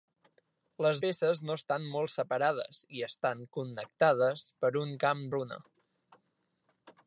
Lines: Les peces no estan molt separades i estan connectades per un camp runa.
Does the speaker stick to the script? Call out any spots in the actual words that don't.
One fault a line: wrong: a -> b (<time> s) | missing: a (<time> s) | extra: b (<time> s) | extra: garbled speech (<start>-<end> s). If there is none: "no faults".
no faults